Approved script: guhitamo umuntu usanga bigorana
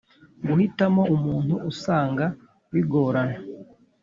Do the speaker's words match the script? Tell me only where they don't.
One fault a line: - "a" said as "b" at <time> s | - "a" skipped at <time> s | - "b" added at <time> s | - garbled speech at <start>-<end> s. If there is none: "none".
none